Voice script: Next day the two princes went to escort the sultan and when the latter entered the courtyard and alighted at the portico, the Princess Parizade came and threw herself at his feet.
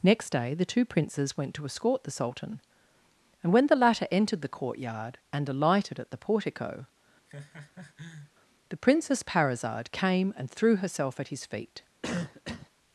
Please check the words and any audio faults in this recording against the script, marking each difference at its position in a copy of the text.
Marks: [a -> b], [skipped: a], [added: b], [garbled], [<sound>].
Next day the two princes went to escort the sultan and when the latter entered the courtyard and alighted at the portico, [laugh] the Princess Parizade came and threw herself at his feet. [cough]